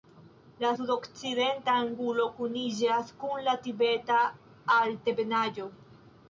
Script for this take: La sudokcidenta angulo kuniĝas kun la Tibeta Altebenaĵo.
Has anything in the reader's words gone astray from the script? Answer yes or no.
no